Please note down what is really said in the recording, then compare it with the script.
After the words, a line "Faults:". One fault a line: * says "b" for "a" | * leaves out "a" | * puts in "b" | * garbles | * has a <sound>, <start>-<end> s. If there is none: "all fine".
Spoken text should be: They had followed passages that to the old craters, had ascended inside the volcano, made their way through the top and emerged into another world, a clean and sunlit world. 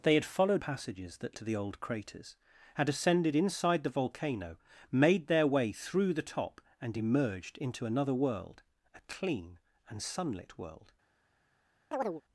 They had followed passages that to the old craters, had ascended inside the volcano, made their way through the top and emerged into another world, a clean and sunlit world.
Faults:
* has a chirp, 11.9-12.2 s